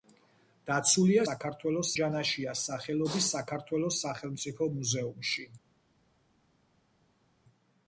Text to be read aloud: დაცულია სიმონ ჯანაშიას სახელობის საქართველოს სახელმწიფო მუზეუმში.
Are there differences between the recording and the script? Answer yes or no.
yes